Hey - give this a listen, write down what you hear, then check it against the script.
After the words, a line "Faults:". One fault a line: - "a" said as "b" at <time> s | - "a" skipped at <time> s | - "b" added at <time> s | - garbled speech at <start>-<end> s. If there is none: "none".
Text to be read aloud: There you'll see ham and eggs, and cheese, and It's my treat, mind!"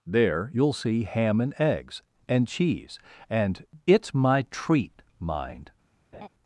There you'll see ham and eggs, and cheese, and It's my treat, mind!"
Faults:
none